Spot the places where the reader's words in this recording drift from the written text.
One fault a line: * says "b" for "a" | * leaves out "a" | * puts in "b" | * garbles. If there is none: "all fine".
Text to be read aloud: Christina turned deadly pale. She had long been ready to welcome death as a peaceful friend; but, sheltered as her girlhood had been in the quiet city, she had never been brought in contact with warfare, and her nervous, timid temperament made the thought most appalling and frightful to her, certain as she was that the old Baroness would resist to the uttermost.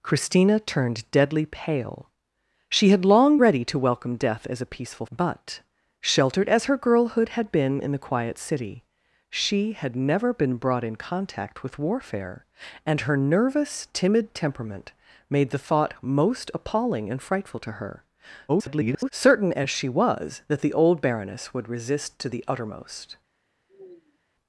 * leaves out "been"
* leaves out "friend"
* garbles